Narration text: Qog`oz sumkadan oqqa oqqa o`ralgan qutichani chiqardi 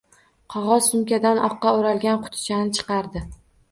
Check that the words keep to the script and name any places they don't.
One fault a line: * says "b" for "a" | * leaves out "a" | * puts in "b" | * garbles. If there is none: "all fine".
* leaves out "oqqa"